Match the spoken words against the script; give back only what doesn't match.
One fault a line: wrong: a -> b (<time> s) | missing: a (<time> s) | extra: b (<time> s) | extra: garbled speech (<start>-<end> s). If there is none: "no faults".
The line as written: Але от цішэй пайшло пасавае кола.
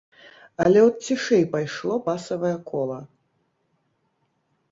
no faults